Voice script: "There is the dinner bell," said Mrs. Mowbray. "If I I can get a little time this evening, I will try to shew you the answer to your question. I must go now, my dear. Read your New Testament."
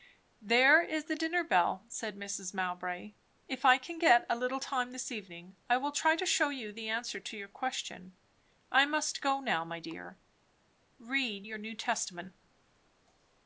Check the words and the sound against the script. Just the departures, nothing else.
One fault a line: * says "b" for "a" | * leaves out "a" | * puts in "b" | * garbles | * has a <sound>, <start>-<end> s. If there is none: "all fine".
* leaves out "I"